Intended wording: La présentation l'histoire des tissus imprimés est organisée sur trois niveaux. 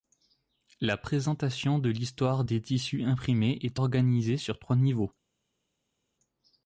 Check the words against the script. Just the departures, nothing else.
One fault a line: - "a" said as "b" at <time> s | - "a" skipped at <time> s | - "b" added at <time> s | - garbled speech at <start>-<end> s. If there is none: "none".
- "de" added at 1.8 s